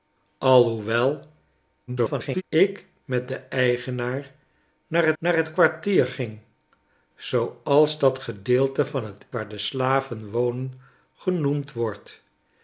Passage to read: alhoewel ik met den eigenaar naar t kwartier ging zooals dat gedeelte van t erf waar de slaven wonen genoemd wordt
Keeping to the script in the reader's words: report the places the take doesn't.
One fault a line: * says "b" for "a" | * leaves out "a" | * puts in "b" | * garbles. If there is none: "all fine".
* garbles
* puts in "naar"
* leaves out "erf"